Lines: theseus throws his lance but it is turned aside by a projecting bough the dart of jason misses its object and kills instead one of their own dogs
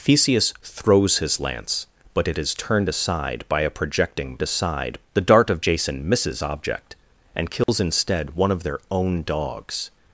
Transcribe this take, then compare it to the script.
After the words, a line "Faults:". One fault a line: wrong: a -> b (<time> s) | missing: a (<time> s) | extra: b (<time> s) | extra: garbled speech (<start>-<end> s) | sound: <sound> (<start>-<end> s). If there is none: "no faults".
theseus throws his lance but it is turned aside by a projecting aside the dart of jason misses object and kills instead one of their own dogs
Faults:
wrong: bough -> aside (4.4 s)
missing: its (6.4 s)
sound: dropout (7.6-7.7 s)